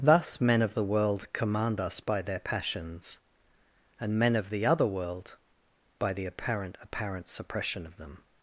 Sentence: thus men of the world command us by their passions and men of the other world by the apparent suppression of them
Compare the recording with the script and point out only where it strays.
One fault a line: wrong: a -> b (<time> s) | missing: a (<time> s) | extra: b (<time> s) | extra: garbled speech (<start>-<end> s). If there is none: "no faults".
extra: apparent (6.8 s)